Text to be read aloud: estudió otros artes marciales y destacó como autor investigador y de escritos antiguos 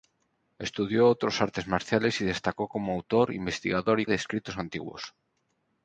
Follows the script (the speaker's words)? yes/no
yes